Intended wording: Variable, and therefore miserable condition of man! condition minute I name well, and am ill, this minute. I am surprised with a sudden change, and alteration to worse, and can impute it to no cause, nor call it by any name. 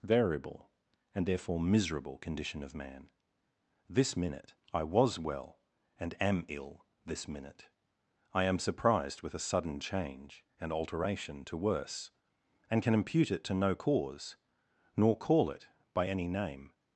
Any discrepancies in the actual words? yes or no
yes